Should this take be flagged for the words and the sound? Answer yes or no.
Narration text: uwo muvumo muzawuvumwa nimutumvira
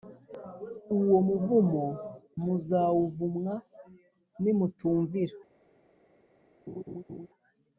yes